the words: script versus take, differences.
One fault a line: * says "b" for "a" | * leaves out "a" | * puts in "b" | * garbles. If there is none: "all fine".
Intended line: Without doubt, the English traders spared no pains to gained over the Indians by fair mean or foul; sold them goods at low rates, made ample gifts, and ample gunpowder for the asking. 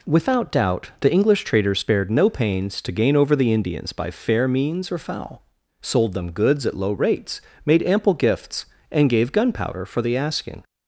* says "gain" for "gained"
* says "means" for "mean"
* says "gave" for "ample"